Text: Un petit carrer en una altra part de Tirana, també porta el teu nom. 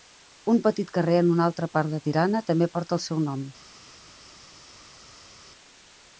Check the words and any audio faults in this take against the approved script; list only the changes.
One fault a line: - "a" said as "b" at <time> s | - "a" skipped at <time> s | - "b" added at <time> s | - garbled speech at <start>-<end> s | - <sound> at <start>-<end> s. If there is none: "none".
- "teu" said as "seu" at 3.1 s